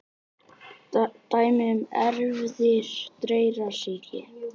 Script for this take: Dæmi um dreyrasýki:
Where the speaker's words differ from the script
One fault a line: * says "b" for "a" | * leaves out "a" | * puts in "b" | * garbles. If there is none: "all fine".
* puts in "erfðir"